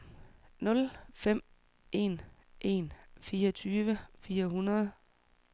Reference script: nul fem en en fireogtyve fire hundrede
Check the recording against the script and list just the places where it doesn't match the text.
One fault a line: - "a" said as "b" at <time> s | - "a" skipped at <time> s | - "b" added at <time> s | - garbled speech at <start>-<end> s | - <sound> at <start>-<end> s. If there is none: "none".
none